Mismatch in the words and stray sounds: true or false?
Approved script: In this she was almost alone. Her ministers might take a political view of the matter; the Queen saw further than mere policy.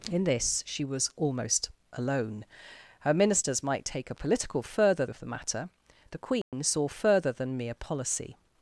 true